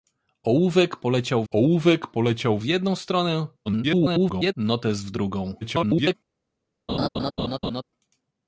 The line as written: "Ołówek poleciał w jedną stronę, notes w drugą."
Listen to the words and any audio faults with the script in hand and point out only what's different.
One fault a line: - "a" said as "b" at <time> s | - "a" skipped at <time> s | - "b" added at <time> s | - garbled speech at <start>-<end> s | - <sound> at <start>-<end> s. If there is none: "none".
- "ołówek poleciał" added at 1.5 s
- garbled speech at 3.7-4.5 s
- garbled speech at 5.6-6.1 s
- laugh at 6.9-7.8 s